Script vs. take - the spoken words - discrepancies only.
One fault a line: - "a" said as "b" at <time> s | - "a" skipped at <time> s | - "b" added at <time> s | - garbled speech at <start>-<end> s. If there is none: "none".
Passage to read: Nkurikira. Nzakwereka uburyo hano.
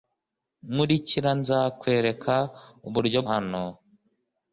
none